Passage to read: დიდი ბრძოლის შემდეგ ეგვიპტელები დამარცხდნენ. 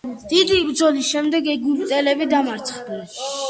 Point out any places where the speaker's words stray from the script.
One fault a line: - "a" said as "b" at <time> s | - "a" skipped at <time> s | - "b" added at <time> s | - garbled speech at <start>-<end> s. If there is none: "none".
none